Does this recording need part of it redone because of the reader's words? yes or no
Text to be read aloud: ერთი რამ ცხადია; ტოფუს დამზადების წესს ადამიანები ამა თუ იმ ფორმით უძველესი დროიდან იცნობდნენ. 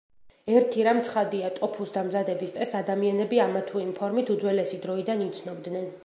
no